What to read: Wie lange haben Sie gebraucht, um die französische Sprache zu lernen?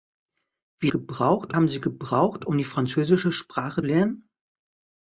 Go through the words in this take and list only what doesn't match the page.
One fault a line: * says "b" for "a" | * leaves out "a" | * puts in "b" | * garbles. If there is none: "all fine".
* says "gebraucht" for "lange"
* leaves out "zu"